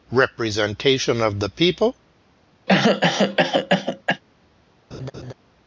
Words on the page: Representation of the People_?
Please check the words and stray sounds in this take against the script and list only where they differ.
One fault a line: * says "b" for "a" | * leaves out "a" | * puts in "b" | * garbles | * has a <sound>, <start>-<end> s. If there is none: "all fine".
* has a cough, 2.7-4.2 s
* has a laugh, 4.9-5.3 s